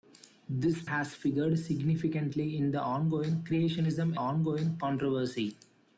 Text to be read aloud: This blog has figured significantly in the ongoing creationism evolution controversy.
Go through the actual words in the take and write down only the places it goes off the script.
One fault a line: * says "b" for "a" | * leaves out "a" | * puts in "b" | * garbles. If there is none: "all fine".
* leaves out "blog"
* says "ongoing" for "evolution"